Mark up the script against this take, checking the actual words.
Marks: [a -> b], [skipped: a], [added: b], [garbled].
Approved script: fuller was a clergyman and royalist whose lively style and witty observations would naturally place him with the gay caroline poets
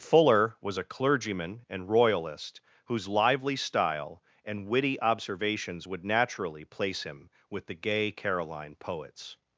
fuller was a clergyman and royalist whose lively style and witty observations would naturally place him with the gay caroline poets